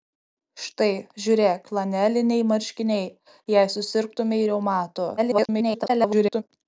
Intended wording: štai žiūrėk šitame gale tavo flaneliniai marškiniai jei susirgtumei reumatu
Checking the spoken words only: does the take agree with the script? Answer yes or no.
no